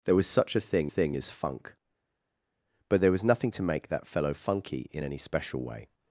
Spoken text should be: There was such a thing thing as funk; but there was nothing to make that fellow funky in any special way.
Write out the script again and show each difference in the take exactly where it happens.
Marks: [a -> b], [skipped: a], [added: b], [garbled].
There was such a thing thing as funk; but there was nothing to make that fellow funky in any special way.